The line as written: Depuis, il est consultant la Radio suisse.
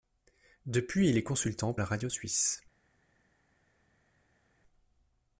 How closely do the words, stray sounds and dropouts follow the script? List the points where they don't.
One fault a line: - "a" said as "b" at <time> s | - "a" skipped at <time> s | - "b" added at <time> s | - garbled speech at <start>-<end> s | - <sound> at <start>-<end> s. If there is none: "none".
none